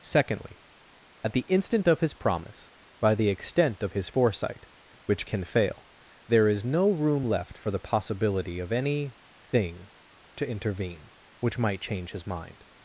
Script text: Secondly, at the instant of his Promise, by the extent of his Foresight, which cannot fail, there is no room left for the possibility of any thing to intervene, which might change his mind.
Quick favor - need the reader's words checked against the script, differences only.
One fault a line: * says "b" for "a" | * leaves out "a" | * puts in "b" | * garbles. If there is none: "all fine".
* says "can" for "cannot"